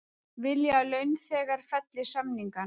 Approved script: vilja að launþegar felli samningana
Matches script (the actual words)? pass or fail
pass